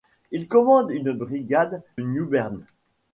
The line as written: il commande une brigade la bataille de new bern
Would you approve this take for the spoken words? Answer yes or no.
no